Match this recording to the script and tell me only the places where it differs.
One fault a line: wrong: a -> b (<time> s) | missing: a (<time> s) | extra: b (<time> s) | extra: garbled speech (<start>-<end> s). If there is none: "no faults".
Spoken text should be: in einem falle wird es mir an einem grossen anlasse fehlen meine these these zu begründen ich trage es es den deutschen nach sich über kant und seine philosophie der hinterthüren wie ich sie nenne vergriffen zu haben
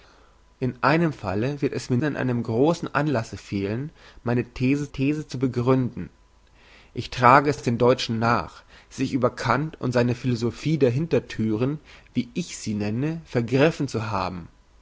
no faults